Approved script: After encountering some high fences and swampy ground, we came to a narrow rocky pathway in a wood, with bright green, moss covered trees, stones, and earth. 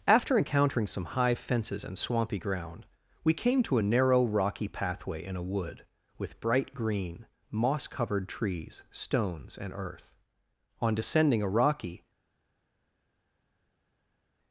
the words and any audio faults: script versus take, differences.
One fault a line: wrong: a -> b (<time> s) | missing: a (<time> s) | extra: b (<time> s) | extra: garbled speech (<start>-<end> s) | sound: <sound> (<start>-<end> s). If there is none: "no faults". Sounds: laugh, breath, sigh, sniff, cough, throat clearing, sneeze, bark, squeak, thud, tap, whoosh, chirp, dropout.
extra: On descending a rocky (10.8 s)